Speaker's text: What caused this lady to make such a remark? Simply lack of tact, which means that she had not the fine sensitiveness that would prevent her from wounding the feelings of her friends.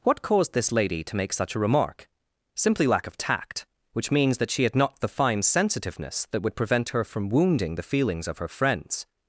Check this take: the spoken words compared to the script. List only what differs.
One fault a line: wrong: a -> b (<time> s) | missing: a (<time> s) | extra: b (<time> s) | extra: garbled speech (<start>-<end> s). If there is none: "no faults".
no faults